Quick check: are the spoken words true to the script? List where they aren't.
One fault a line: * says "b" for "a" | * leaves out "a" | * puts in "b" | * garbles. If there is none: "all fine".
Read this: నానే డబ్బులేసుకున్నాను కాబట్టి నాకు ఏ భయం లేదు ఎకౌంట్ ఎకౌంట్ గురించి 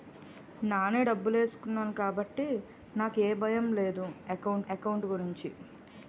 all fine